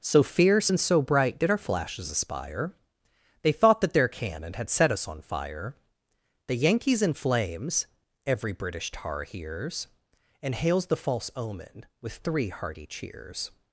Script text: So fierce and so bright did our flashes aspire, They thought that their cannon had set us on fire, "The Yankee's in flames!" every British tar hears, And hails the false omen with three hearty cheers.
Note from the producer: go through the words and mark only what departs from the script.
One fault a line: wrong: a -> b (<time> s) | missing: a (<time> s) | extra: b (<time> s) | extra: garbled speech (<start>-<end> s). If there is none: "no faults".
no faults